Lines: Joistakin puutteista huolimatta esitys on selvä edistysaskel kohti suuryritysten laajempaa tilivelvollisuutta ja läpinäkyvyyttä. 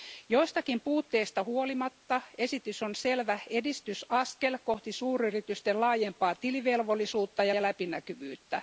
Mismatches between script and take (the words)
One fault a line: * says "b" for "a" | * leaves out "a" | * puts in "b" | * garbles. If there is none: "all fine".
* puts in "ja"